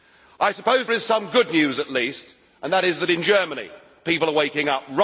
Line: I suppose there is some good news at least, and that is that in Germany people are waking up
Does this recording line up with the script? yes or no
no